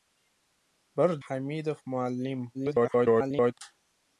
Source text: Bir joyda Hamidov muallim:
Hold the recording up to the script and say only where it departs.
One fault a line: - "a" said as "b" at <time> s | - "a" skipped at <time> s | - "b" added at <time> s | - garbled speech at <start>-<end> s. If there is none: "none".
- "joyda" skipped at 1.1 s
- garbled speech at 2.5-3.5 s